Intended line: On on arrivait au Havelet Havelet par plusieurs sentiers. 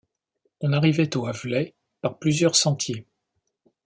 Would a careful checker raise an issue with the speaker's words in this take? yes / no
yes